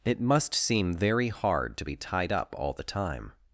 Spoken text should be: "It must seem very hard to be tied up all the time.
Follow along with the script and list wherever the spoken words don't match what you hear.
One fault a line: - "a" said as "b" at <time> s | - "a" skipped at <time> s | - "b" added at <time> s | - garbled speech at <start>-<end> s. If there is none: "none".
none